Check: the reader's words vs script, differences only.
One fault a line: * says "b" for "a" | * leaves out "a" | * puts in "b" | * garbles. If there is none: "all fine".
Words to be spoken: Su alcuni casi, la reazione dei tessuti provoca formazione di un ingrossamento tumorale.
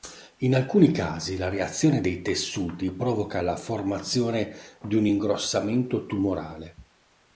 * says "In" for "Su"
* puts in "la"